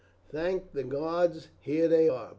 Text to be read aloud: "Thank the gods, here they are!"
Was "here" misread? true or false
false